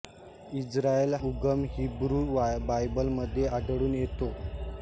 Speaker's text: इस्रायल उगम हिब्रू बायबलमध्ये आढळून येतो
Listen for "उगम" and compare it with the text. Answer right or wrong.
right